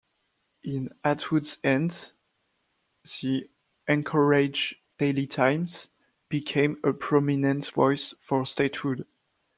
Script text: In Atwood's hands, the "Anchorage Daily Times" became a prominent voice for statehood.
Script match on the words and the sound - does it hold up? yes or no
yes